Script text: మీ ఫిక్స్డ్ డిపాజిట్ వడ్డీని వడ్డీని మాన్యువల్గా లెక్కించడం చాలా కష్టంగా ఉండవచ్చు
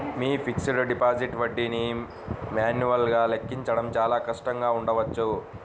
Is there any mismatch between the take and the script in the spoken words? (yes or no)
yes